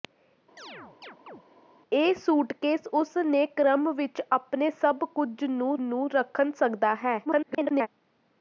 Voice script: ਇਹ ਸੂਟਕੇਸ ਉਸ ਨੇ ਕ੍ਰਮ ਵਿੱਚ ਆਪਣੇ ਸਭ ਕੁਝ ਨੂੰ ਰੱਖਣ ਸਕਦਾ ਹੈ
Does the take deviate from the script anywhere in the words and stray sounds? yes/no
yes